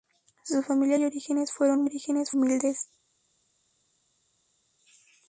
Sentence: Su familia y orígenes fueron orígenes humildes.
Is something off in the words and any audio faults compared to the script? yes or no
no